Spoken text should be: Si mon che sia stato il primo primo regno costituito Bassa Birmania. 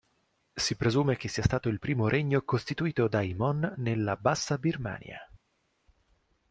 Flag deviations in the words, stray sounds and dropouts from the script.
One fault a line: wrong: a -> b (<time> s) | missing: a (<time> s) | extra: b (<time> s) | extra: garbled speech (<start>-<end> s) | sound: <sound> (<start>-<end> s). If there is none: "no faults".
wrong: mon -> presume (0.7 s)
missing: primo (2.1 s)
extra: dai mon nella (3.1 s)